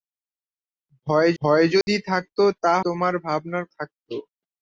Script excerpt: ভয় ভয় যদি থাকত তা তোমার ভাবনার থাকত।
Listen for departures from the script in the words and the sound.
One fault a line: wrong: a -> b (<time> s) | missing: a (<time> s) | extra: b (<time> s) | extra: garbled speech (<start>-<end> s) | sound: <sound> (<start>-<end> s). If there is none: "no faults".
sound: dropout (1.8-1.9 s)